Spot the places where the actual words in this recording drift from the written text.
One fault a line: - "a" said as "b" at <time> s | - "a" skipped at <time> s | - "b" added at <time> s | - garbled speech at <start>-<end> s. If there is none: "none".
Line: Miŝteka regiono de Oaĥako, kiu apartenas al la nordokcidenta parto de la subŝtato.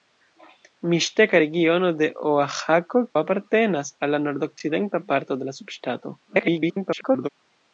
- "kiu" skipped at 3.0 s
- garbled speech at 6.3-7.3 s